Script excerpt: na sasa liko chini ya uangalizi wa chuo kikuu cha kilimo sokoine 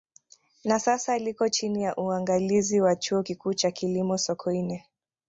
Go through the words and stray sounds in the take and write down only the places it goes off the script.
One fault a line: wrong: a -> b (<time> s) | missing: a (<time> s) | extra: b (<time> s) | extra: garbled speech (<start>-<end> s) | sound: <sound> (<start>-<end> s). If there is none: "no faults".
no faults